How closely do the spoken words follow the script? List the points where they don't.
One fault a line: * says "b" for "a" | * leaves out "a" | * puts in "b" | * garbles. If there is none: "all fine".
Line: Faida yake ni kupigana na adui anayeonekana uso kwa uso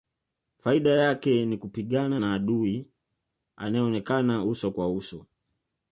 all fine